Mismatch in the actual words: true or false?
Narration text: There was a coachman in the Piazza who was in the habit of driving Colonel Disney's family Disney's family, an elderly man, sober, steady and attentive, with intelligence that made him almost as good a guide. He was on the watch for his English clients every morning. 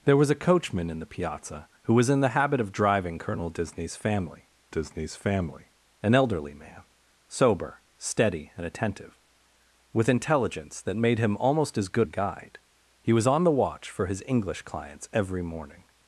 false